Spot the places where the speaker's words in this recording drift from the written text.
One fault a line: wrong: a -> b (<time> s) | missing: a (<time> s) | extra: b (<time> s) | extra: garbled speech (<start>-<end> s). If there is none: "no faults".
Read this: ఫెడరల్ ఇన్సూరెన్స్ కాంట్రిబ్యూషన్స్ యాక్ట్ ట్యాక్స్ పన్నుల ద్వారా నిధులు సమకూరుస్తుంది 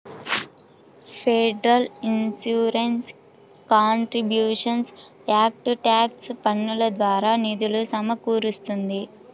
no faults